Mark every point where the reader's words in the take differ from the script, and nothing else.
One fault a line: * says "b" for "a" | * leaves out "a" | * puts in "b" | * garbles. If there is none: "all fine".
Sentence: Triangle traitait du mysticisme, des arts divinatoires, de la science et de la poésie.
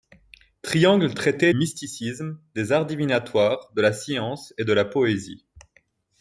* leaves out "du"